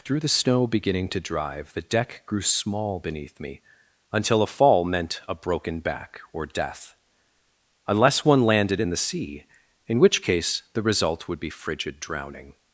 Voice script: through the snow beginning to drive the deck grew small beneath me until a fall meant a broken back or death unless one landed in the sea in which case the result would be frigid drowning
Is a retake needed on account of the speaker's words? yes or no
no